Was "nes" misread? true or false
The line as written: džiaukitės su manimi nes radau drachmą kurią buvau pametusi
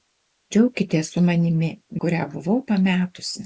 true